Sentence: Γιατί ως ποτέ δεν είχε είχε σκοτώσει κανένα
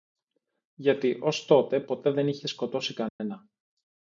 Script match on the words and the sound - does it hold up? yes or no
no